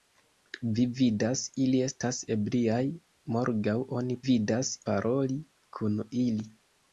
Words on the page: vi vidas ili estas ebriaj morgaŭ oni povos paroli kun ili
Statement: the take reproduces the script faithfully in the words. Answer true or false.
false